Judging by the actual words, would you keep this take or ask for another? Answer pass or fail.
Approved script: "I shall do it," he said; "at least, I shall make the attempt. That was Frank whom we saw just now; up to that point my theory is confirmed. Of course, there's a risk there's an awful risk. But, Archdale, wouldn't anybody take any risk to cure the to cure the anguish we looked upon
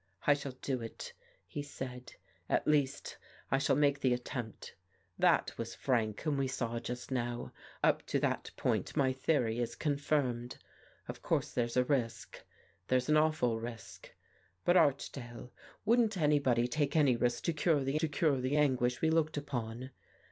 pass